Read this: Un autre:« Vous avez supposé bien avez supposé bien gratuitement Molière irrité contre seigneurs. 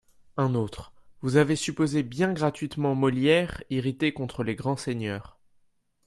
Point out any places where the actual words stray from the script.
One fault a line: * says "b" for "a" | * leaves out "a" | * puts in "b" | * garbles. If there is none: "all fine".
* leaves out "avez supposé bien"
* puts in "les grands"